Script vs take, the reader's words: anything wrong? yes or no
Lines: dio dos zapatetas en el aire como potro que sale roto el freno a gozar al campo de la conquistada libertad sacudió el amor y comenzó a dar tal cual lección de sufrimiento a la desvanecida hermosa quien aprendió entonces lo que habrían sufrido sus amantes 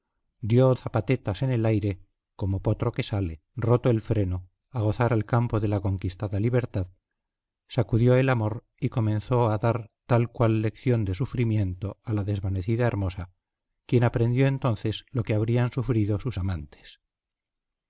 yes